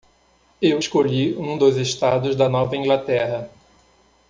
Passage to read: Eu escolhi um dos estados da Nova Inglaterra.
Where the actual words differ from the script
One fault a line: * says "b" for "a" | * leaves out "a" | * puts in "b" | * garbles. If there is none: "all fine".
all fine